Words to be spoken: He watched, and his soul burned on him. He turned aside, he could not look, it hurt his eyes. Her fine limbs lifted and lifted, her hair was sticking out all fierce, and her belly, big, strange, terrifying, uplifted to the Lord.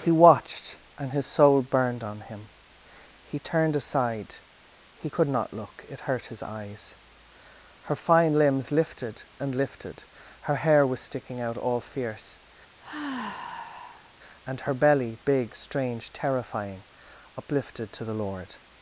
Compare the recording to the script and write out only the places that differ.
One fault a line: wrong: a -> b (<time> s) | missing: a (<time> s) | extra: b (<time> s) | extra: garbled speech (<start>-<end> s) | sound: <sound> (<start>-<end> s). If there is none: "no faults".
sound: sigh (12.8-14.1 s)